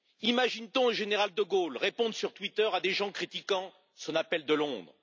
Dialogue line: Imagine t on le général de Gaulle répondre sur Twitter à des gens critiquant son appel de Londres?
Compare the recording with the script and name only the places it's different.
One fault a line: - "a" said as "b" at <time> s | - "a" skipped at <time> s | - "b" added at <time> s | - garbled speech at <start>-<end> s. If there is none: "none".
none